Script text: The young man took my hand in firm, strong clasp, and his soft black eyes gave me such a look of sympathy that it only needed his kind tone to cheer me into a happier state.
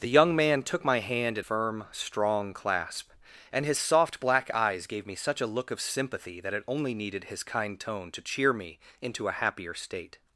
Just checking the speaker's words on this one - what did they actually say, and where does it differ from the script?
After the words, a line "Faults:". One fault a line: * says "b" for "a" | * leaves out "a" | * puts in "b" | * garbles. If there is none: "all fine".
The young man took my hand in firm, strong clasp, and his soft black eyes gave me such a look of sympathy that it only needed his kind tone to cheer me into a happier state.
Faults:
all fine